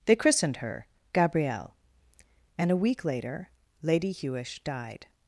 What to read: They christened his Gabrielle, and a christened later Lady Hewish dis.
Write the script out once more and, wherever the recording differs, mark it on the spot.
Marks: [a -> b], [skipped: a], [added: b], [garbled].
They christened [his -> her] Gabrielle, and a [christened -> week] later Lady Hewish [dis. -> died]